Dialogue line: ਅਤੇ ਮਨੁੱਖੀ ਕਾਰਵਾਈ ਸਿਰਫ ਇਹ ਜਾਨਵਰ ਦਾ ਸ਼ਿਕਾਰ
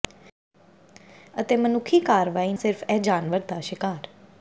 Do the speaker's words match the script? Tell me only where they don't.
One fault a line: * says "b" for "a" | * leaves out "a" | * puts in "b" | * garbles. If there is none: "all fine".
all fine